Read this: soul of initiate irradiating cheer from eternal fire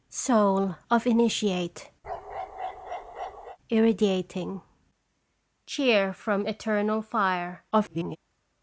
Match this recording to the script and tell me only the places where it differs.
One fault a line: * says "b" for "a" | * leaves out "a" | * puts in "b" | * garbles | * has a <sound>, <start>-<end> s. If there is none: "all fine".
* has a bark, 2.0-3.6 s
* garbles